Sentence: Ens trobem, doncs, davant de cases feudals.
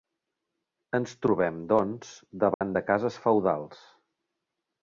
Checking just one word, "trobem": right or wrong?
right